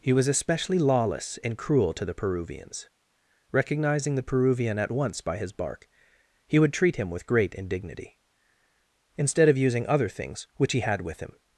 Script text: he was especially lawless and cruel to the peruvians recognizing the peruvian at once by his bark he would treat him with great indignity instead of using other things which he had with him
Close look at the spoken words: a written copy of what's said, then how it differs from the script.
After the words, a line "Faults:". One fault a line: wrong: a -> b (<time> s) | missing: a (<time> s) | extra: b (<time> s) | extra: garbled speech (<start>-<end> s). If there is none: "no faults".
he was especially lawless and cruel to the peruvians recognizing the peruvian at once by his bark he would treat him with great indignity instead of using other things which he had with him
Faults:
no faults